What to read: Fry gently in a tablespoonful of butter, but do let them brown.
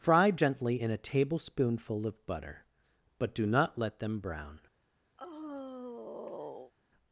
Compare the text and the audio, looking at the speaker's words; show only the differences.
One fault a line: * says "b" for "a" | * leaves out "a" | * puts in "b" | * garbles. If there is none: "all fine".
* puts in "not"